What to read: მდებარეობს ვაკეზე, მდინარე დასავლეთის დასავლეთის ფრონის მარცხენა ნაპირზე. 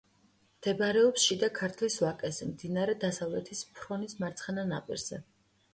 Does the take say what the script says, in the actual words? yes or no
no